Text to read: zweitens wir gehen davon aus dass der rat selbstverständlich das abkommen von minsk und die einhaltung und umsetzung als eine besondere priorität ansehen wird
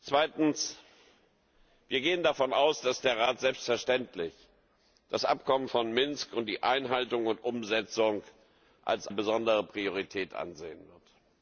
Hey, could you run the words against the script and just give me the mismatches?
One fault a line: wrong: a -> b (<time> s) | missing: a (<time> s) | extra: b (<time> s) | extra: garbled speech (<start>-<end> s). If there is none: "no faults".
missing: eine (9.1 s)